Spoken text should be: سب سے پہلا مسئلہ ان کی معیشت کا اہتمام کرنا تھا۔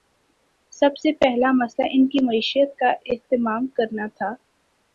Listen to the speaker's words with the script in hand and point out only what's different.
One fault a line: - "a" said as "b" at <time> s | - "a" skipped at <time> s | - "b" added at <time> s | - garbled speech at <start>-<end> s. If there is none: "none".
none